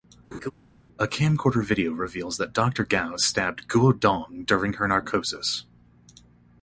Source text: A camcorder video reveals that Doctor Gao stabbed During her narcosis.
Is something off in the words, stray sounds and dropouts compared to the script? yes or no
yes